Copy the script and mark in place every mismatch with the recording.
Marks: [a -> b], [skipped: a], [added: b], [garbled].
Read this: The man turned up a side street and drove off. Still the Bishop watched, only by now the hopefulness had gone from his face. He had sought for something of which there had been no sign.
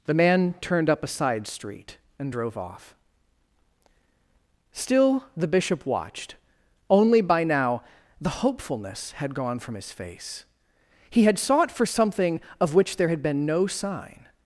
The man turned up a side street and drove off. Still the Bishop watched, only by now the hopefulness had gone from his face. He had sought for something of which there had been no sign.